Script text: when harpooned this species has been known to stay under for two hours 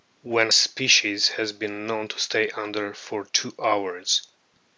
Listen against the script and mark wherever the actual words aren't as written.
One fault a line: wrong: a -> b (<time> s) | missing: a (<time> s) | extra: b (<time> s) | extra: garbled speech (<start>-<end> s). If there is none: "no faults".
missing: harpooned this (0.5 s)